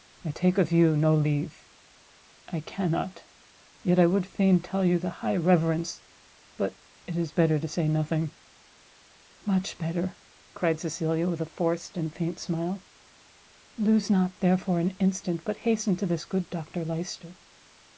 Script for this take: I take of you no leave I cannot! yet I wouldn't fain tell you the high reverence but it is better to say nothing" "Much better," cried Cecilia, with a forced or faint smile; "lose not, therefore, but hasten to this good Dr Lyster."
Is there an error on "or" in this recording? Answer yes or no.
yes